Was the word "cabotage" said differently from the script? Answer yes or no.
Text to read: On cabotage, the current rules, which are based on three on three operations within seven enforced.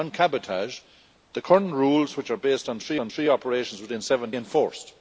no